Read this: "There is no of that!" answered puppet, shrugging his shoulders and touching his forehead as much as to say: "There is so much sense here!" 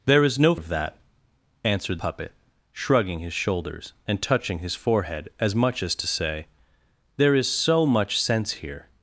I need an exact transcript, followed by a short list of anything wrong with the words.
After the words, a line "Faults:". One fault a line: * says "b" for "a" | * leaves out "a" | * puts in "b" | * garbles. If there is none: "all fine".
"There is no of that!" answered puppet, shrugging his shoulders and touching his forehead as much as to say: "There is so much sense here!"
Faults:
all fine